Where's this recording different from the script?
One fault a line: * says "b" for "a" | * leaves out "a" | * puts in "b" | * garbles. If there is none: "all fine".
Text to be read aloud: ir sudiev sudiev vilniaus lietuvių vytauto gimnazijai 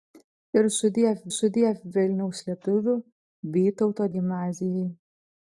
all fine